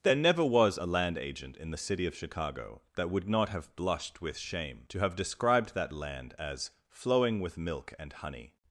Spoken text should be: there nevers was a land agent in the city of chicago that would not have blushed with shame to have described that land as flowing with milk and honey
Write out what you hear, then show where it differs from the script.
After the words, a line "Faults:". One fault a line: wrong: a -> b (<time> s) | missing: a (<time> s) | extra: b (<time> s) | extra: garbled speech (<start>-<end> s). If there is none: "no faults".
there never was a land agent in the city of chicago that would not have blushed with shame to have described that land as flowing with milk and honey
Faults:
wrong: nevers -> never (0.1 s)